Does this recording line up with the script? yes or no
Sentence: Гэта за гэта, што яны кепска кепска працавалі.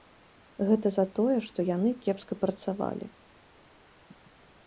no